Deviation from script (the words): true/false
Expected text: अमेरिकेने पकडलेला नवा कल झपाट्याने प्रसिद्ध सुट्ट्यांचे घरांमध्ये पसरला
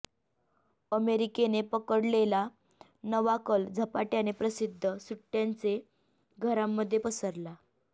false